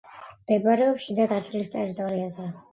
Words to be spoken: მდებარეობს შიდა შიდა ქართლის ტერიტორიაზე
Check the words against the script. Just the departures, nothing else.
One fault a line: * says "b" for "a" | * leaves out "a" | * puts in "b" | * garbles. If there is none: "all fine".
* leaves out "შიდა"